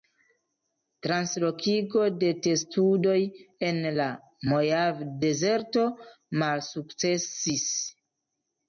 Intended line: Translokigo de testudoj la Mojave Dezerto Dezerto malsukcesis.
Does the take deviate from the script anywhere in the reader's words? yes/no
yes